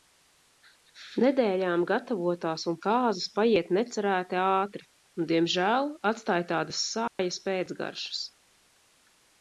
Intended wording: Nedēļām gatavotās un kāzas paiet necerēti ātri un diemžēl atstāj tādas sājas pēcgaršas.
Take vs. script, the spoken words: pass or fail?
pass